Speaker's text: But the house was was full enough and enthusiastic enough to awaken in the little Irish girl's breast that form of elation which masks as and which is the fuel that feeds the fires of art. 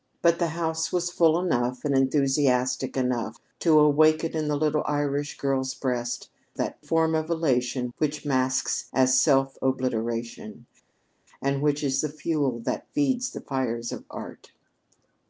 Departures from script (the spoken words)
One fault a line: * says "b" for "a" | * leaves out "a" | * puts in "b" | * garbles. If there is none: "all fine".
* leaves out "was"
* puts in "self obliteration"